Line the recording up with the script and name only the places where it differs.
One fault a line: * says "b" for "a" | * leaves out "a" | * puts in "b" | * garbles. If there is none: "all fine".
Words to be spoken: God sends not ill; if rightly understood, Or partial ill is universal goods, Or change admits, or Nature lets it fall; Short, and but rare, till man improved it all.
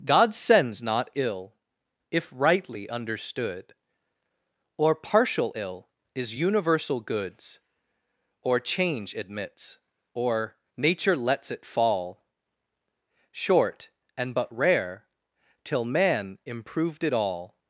all fine